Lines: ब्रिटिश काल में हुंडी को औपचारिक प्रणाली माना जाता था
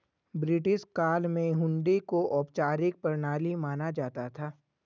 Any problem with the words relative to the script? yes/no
no